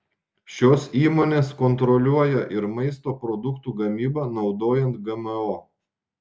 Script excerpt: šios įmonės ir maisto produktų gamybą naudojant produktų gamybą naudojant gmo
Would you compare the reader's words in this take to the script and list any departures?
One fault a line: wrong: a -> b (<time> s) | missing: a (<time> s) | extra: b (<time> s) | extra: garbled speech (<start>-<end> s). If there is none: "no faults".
extra: kontroliuoja (1.6 s)
missing: produktų gamybą naudojant (5.0 s)